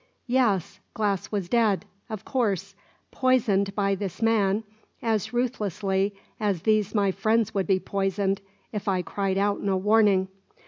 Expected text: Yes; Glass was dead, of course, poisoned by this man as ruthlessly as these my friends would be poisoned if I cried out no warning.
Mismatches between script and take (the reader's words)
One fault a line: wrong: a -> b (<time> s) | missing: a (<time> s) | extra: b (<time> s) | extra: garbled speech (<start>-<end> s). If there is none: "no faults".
no faults